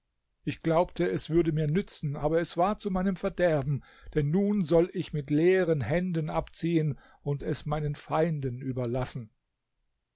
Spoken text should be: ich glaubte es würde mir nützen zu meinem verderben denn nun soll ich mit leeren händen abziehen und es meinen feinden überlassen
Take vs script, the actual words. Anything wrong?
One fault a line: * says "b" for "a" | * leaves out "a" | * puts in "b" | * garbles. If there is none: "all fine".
* puts in "aber es war"